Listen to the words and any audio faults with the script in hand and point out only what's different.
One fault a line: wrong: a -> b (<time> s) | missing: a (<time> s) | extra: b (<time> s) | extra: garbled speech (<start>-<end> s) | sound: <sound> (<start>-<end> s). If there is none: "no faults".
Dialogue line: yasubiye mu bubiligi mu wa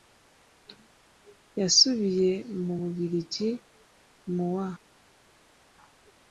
no faults